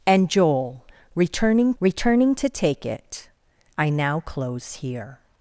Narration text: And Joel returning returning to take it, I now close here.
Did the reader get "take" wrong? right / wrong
right